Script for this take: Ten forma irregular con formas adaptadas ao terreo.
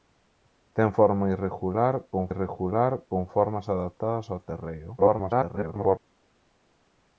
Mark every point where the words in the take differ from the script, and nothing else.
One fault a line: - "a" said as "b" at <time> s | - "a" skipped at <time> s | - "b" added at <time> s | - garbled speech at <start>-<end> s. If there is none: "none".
- "irregular con" added at 2.3 s
- garbled speech at 5.0-6.0 s